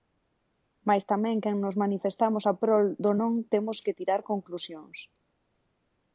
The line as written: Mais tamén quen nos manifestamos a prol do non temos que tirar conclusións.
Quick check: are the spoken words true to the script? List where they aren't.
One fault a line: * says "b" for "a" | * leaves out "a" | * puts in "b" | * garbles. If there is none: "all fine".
all fine